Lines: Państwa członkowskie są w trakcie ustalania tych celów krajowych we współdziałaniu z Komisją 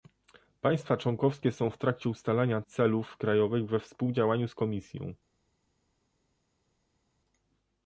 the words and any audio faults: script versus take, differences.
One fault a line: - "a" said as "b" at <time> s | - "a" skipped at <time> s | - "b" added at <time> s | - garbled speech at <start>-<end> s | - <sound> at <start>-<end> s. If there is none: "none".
- "tych" skipped at 2.6 s